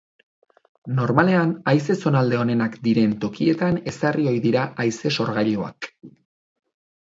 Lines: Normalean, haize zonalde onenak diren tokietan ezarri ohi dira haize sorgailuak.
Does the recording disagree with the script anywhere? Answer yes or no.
no